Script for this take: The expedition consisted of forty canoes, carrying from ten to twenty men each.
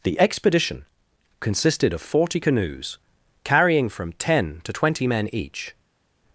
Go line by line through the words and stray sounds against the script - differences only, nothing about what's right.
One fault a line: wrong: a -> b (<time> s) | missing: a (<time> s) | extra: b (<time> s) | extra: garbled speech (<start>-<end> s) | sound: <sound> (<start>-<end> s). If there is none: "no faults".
no faults